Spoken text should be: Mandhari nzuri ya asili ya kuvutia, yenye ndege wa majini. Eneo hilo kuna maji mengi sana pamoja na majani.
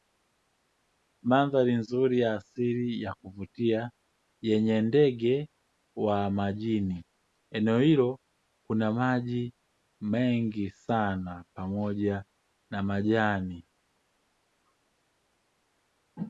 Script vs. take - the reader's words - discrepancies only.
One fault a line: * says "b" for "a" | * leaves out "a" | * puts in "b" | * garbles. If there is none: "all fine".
all fine